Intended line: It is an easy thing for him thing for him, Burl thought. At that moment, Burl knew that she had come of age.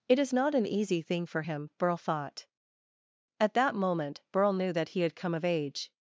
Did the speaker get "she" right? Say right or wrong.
wrong